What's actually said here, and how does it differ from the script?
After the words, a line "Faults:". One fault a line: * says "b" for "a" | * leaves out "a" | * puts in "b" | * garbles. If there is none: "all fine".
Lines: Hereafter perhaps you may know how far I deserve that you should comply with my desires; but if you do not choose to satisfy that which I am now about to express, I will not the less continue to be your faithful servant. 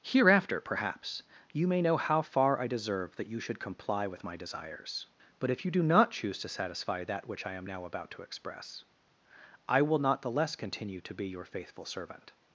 Hereafter perhaps you may know how far I deserve that you should comply with my desires; but if you do not choose to satisfy that which I am now about to express, I will not the less continue to be your faithful servant.
Faults:
all fine